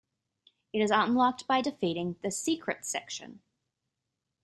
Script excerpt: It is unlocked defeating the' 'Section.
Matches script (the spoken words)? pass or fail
fail